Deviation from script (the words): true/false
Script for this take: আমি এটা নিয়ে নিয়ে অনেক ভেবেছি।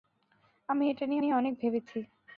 false